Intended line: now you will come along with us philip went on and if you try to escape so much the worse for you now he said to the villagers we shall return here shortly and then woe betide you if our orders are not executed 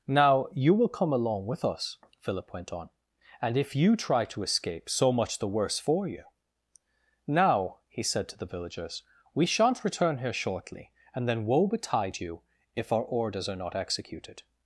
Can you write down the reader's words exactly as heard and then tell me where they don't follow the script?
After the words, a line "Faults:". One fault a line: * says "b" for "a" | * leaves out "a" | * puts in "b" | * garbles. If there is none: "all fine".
now you will come along with us philip went on and if you try to escape so much the worse for you now he said to the villagers we shan't return here shortly and then woe betide you if our orders are not executed
Faults:
* says "shan't" for "shall"